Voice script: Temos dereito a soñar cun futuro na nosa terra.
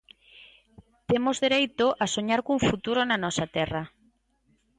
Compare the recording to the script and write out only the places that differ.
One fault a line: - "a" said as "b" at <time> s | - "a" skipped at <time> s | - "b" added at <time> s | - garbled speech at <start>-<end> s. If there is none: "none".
none